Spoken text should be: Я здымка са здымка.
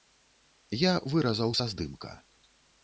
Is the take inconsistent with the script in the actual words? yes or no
yes